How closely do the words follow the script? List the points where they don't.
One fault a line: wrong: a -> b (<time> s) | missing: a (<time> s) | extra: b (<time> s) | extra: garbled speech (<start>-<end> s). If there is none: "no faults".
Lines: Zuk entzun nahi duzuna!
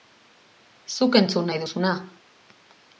no faults